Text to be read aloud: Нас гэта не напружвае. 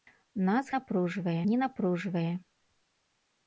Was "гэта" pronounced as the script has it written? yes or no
no